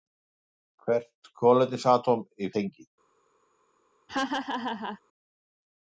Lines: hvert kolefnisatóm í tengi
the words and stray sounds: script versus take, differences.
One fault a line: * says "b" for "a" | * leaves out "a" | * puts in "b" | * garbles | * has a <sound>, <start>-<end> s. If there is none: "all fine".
* has a laugh, 4.1-5.0 s